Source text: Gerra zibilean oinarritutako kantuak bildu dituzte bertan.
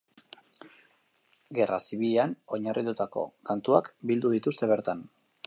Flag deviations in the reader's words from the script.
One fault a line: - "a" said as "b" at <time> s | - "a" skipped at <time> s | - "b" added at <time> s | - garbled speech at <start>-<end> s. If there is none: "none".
none